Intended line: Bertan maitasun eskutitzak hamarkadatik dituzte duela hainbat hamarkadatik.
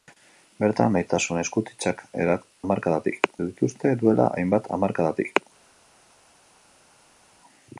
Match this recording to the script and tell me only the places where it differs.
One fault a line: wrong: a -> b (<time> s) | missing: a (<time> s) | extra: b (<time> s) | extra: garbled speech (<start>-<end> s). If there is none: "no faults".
no faults